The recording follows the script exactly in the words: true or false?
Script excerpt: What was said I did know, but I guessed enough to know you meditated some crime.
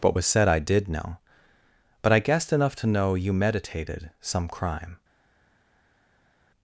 true